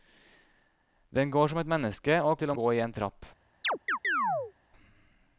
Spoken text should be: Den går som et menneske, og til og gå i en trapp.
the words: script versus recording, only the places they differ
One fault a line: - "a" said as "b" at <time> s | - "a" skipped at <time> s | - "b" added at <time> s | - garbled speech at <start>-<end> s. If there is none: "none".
none